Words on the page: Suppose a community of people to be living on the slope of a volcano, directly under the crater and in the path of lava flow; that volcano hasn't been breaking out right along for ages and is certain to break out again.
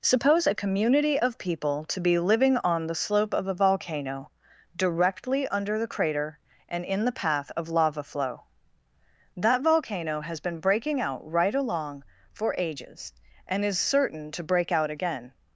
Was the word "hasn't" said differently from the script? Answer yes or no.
yes